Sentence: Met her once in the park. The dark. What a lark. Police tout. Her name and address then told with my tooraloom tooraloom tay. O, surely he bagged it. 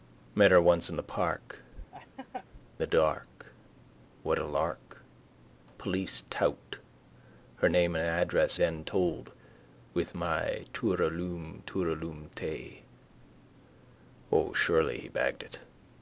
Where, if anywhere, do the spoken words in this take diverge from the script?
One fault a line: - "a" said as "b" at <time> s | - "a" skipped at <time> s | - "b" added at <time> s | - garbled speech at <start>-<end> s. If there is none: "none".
none